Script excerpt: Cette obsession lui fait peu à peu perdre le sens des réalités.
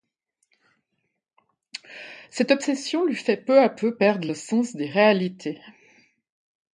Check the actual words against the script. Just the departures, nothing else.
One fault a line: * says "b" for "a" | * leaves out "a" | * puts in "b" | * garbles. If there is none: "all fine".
all fine